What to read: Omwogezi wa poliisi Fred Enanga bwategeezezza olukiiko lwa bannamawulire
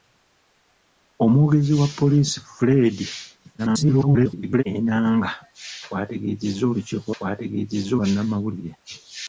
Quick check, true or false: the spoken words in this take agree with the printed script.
false